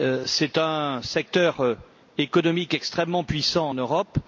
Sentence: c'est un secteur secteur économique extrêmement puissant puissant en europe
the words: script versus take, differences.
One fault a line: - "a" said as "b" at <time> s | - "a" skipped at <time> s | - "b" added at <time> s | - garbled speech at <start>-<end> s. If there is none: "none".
- "secteur" skipped at 1.8 s
- "puissant" skipped at 3.7 s